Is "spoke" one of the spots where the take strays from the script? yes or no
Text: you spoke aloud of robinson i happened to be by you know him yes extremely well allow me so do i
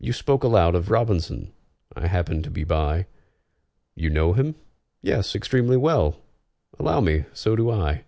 no